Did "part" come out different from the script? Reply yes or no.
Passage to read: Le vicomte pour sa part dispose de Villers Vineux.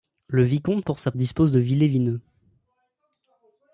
yes